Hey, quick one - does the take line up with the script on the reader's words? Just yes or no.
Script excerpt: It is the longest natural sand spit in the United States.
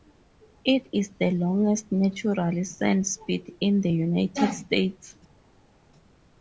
yes